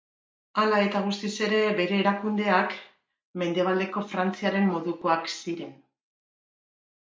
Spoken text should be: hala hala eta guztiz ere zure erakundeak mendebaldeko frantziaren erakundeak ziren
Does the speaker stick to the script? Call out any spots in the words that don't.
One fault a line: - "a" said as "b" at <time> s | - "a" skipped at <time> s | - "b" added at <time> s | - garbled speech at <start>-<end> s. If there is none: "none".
- "hala" skipped at 0.8 s
- "zure" said as "bere" at 1.8 s
- "erakundeak" said as "modukoak" at 4.7 s